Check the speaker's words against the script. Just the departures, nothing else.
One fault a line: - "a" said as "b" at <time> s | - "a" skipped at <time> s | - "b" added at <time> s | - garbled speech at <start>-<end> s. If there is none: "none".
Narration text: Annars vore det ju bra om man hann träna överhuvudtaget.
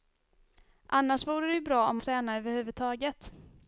- "man hann" skipped at 2.0 s